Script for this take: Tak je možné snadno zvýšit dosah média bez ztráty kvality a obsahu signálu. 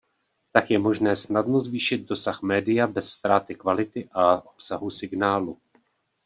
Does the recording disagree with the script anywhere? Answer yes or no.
no